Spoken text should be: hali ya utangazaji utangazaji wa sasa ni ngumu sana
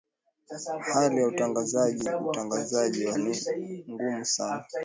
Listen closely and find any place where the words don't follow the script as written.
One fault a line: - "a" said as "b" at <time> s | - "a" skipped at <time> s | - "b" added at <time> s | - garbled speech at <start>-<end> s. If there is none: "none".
- "sasa" skipped at 3.2 s